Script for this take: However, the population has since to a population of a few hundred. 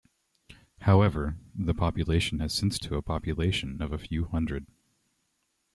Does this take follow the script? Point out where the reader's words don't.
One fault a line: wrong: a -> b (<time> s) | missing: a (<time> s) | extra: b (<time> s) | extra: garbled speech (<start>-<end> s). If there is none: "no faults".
no faults